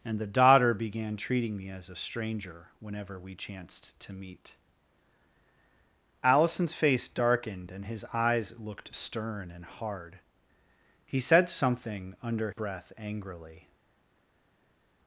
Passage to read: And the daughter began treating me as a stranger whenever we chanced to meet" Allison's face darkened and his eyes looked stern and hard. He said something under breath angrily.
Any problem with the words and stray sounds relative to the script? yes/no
no